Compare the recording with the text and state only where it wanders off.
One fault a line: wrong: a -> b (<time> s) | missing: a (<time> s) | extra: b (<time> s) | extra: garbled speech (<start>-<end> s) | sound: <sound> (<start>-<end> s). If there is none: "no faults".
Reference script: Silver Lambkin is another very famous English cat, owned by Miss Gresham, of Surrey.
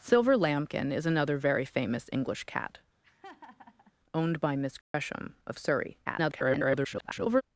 sound: laugh (3.0-3.9 s)
sound: dropout (4.8-4.9 s)
extra: garbled speech (6.1-7.4 s)